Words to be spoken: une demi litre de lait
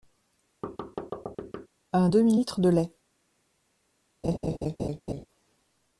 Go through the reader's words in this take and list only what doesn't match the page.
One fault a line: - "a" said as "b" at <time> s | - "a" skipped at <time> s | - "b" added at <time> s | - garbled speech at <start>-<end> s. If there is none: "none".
- "une" said as "un" at 1.9 s